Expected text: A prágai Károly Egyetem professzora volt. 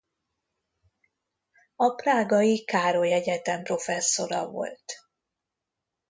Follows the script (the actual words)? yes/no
yes